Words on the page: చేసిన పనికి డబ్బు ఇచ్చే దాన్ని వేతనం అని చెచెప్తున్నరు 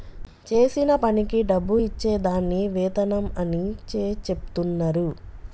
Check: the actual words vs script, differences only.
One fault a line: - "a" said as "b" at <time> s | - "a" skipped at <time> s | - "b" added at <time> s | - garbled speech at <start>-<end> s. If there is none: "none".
none